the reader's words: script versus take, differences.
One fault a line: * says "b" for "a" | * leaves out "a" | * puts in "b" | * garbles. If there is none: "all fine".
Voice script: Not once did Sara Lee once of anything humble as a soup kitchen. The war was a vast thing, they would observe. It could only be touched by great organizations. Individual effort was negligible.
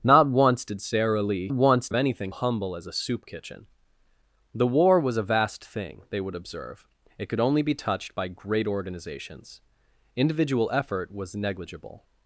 all fine